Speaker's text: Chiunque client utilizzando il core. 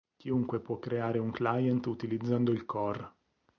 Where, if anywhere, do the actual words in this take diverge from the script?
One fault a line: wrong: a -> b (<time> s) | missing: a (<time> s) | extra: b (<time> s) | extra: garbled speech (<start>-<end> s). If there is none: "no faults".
extra: può creare un (0.6 s)